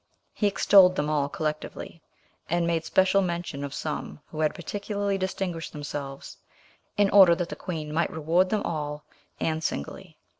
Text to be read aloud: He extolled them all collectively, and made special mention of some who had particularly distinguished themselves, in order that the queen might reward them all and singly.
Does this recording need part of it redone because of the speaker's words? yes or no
no